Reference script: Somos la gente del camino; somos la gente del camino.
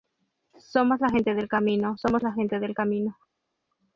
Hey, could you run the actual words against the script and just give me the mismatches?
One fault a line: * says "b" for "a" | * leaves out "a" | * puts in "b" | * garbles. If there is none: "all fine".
all fine